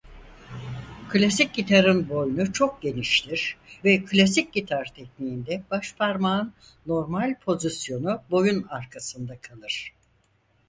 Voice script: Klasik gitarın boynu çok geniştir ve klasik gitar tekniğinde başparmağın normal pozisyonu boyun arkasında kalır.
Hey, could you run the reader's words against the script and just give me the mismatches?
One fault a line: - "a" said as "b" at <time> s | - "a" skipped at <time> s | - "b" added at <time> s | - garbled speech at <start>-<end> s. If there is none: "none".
none